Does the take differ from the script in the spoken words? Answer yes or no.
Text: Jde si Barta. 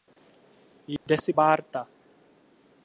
no